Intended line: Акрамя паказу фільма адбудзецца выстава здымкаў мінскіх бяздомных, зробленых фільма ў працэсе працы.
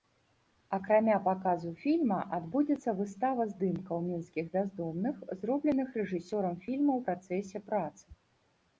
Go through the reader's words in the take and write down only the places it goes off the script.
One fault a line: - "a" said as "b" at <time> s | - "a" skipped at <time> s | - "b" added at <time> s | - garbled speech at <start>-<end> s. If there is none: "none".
- "рэжысёрам" added at 6.0 s